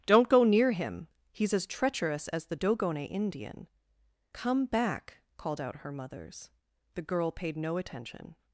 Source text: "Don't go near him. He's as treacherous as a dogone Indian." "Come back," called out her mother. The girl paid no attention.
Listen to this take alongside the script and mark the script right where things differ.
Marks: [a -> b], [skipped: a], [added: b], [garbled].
"Don't go near him. He's as treacherous as [a -> the] dogone Indian." "Come back," called out her [mother. -> mothers] The girl paid no attention.